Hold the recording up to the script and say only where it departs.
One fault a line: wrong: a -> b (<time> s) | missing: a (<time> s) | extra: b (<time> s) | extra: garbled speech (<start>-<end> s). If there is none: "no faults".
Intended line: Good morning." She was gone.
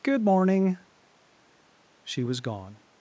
no faults